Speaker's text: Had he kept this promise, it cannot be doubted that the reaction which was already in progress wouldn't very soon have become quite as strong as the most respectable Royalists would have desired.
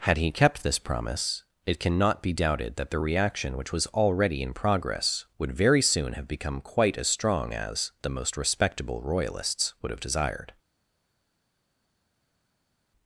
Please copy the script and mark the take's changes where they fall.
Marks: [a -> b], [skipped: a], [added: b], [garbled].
Had he kept this promise, it cannot be doubted that the reaction which was already in progress [wouldn't -> would] very soon have become quite as strong as the most respectable Royalists would have desired.